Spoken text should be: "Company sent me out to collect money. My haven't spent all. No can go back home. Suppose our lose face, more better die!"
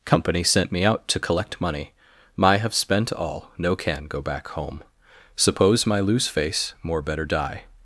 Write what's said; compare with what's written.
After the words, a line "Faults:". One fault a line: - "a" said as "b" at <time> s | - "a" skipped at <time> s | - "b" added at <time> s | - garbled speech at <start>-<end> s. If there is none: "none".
"Company sent me out to collect money. My have spent all. No can go back home. Suppose my lose face, more better die!"
Faults:
- "haven't" said as "have" at 2.6 s
- "our" said as "my" at 5.8 s